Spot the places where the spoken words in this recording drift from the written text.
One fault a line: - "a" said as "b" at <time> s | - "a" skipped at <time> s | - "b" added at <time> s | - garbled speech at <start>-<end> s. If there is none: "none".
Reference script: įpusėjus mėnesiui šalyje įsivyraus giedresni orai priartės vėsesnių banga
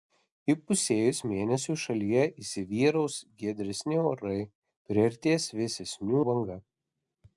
none